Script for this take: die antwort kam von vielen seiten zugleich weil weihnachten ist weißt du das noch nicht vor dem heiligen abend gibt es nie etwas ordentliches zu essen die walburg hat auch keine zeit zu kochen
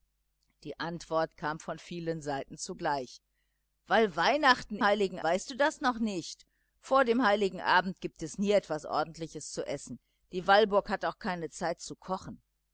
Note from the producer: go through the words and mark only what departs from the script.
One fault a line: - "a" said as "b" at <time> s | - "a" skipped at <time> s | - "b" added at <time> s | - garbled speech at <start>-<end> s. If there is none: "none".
- "ist" said as "heiligen" at 4.8 s